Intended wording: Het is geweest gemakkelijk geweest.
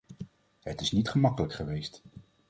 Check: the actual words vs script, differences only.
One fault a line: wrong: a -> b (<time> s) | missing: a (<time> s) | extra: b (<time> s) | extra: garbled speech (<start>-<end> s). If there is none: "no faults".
wrong: geweest -> niet (0.9 s)